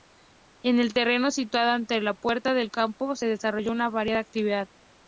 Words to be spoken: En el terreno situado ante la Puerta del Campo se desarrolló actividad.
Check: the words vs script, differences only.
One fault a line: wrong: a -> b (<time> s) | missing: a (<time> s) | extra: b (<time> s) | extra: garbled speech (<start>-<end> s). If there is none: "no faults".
extra: una variada (3.7 s)